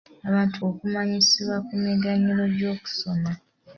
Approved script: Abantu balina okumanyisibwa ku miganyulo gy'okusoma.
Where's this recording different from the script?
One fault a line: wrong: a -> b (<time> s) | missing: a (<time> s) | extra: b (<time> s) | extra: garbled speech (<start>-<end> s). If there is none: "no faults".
missing: balina (0.6 s)